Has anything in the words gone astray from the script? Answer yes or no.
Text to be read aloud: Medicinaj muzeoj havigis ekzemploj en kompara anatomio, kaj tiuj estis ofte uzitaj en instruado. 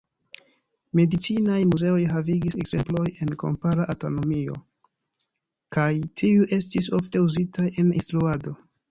no